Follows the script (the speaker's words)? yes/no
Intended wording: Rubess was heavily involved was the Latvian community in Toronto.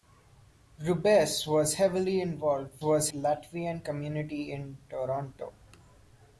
yes